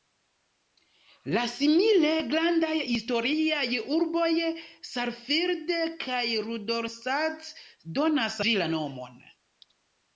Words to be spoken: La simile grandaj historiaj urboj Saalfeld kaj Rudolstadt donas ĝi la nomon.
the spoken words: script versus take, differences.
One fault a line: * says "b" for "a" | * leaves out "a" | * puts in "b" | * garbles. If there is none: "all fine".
all fine